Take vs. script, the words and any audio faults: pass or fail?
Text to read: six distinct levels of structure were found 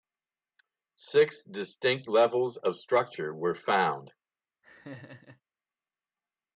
fail